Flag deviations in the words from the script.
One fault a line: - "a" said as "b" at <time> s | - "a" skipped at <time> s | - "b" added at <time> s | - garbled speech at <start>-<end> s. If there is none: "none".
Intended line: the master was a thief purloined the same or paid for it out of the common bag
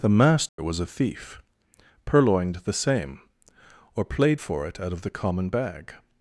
- "paid" said as "played" at 4.0 s